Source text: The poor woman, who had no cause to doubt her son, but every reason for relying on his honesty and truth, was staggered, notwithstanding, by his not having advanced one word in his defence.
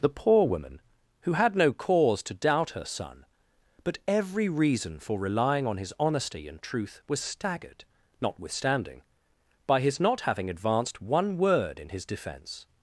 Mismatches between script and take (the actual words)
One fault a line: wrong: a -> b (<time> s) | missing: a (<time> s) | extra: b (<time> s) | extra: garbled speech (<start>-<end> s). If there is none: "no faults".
no faults